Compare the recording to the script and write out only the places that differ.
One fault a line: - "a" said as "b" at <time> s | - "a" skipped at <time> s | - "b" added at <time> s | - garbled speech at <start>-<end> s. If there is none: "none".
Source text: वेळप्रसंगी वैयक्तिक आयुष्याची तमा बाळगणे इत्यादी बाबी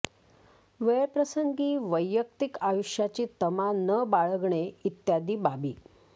- "न" added at 3.8 s